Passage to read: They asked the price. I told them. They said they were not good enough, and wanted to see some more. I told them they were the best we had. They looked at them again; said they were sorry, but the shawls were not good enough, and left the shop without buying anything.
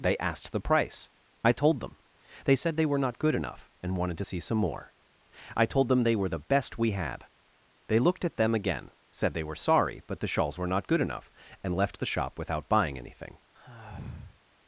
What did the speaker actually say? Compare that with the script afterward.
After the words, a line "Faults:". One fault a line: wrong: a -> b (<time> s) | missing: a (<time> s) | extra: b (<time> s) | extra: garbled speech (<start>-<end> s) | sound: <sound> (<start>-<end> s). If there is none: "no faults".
They asked the price. I told them. They said they were not good enough, and wanted to see some more. I told them they were the best we had. They looked at them again; said they were sorry, but the shawls were not good enough, and left the shop without buying anything.
Faults:
sound: sigh (13.6-14.4 s)